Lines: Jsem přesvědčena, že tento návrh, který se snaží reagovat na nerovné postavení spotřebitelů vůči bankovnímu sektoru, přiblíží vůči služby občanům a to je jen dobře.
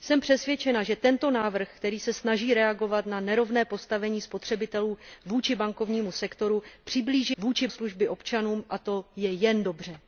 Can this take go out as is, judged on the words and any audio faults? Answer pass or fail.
pass